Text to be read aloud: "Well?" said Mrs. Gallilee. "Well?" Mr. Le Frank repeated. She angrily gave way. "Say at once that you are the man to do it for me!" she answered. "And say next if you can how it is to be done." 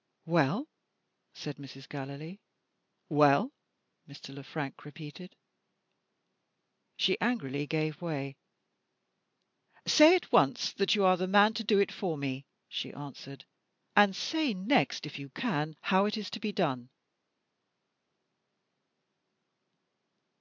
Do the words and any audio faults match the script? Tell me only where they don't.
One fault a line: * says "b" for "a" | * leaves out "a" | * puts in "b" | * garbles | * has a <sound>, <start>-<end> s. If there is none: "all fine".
all fine